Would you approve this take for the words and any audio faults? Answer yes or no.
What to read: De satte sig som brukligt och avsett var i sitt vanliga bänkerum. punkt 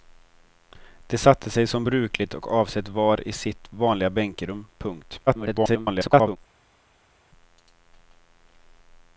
no